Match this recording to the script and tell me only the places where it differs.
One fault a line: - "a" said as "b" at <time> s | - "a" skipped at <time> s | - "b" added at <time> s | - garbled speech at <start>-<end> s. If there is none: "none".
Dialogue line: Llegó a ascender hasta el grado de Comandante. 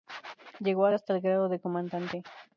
- "ascender" skipped at 0.9 s